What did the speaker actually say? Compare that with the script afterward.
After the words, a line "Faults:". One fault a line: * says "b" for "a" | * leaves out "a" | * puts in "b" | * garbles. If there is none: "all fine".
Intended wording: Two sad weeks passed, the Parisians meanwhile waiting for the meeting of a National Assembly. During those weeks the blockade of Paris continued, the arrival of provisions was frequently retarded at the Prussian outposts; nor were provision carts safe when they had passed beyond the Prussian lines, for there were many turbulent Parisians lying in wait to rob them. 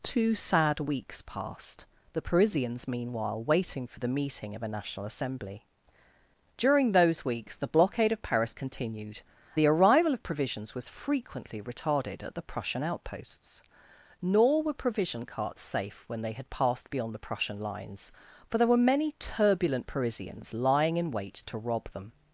Two sad weeks passed, the Parisians meanwhile waiting for the meeting of a National Assembly. During those weeks the blockade of Paris continued, the arrival of provisions was frequently retarded at the Prussian outposts; nor were provision carts safe when they had passed beyond the Prussian lines, for there were many turbulent Parisians lying in wait to rob them.
Faults:
all fine